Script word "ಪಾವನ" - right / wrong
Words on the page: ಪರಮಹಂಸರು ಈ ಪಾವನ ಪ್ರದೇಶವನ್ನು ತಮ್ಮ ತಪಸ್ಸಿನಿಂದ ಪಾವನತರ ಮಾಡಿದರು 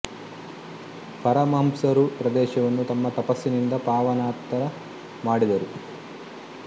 wrong